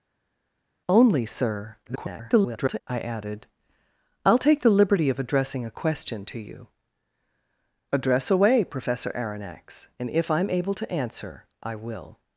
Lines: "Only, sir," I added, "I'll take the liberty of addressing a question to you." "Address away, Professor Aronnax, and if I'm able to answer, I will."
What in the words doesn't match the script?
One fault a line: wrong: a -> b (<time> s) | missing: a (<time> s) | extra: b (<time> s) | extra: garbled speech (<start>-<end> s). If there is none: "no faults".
extra: garbled speech (1.9-2.8 s)